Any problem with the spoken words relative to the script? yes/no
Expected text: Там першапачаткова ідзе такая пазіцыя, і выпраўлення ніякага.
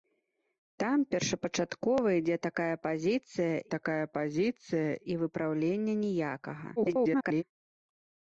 yes